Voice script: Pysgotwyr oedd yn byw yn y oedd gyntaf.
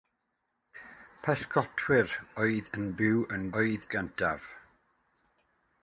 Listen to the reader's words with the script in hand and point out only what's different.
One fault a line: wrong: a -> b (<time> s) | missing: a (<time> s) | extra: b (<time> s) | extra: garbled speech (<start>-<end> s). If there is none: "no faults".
no faults